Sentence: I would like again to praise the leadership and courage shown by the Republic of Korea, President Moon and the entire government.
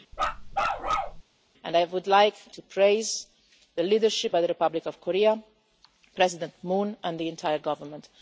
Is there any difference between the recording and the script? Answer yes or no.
yes